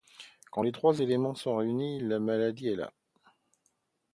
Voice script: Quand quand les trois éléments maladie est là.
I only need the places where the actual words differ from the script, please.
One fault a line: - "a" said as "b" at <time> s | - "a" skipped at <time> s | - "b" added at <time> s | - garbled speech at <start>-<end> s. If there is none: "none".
- "quand" skipped at 0.6 s
- "sont réunis la" added at 1.3 s